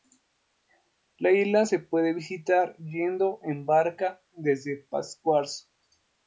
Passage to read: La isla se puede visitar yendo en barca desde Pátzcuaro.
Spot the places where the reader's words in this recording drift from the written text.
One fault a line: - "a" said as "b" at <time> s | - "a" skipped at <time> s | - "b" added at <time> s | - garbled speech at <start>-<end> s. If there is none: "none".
none